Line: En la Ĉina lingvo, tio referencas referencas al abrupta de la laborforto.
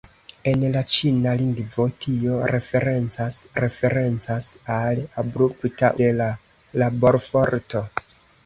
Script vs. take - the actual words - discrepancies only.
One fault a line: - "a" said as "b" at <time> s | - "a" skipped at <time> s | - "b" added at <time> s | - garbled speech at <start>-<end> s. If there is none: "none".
none